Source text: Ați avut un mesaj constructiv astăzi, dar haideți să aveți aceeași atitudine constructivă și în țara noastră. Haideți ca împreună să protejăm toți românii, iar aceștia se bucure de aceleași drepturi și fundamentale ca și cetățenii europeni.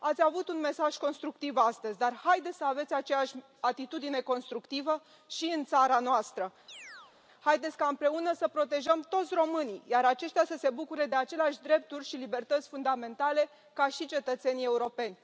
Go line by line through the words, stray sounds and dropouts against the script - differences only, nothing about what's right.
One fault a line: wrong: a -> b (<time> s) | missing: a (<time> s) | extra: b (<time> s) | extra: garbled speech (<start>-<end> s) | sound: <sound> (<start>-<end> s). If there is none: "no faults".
sound: chirp (6.7-7.2 s)
extra: să (10.5 s)
extra: libertăți (12.2 s)